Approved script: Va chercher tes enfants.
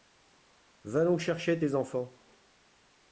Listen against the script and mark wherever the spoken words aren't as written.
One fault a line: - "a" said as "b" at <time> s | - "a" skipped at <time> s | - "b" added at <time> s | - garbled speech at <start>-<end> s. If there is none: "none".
- "donc" added at 1.1 s